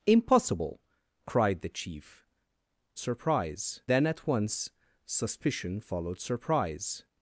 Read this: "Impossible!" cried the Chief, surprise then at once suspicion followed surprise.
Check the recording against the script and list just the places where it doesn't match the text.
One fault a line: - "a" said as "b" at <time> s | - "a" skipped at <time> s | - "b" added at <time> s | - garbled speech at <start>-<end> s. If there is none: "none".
none